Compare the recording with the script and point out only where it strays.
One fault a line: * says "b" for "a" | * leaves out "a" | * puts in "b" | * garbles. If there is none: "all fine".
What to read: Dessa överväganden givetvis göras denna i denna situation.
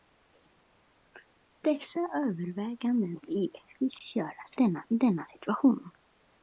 all fine